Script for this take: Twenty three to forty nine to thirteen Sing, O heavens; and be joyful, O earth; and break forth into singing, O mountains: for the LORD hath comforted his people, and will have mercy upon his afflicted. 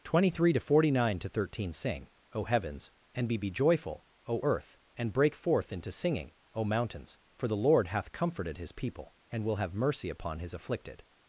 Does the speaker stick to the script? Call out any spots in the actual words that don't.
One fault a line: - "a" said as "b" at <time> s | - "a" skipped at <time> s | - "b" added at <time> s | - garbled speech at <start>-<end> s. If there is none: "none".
- "be" added at 3.4 s